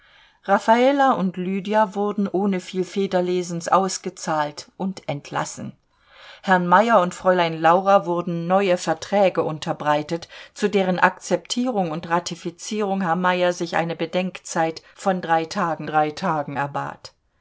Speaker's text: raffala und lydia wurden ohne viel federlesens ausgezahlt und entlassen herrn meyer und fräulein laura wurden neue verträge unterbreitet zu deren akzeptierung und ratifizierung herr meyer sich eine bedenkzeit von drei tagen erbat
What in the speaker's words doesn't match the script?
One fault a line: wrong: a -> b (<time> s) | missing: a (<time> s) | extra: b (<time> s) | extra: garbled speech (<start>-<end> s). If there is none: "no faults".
extra: drei tagen (15.9 s)